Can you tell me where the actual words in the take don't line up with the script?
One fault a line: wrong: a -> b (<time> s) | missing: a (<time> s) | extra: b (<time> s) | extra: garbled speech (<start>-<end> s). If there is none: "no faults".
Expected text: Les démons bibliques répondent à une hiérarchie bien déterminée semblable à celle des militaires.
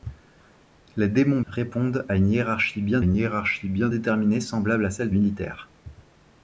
missing: bibliques (1.4 s)
extra: une hiérarchie bien (3.0 s)
missing: des (5.1 s)